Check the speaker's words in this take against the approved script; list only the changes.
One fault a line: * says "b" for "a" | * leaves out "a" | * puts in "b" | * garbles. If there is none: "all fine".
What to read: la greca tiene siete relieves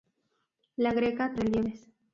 * leaves out "tiene siete"